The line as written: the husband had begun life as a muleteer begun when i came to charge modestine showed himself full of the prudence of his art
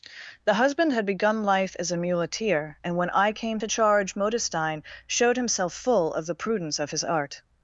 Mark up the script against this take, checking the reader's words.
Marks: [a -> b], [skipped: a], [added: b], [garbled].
the husband had begun life as a muleteer [begun -> and] when i came to charge modestine showed himself full of the prudence of his art